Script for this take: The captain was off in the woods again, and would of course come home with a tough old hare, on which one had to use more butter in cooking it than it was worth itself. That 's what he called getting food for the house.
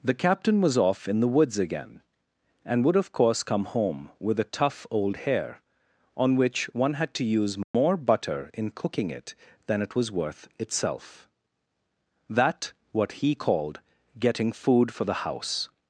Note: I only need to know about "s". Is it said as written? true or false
false